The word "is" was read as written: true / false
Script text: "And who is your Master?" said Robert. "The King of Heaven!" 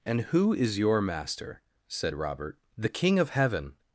true